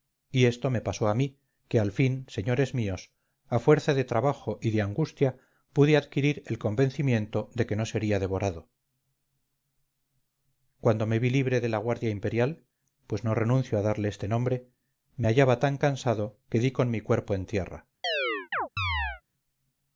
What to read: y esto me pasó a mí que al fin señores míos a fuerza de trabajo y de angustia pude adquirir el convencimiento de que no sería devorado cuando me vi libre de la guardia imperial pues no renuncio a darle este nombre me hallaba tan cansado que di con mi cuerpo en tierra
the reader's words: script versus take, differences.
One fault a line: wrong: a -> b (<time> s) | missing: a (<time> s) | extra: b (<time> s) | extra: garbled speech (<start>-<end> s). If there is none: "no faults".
no faults